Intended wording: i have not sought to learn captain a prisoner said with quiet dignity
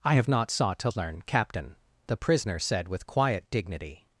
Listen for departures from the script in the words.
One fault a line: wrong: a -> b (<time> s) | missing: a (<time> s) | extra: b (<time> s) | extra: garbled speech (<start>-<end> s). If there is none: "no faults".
wrong: a -> the (2.1 s)